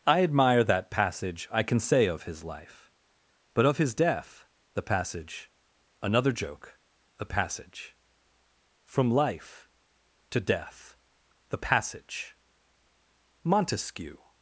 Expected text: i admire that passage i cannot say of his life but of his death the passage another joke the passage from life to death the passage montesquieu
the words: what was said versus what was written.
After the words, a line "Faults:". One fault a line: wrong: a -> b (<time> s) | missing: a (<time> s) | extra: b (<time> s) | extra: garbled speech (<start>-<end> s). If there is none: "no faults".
i admire that passage i can say of his life but of his death the passage another joke the passage from life to death the passage montesquieu
Faults:
wrong: cannot -> can (1.6 s)